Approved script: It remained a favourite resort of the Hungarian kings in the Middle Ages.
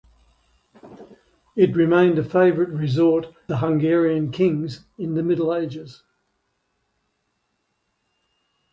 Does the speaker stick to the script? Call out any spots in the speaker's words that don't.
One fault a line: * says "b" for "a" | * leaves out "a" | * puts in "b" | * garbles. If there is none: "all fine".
* leaves out "of"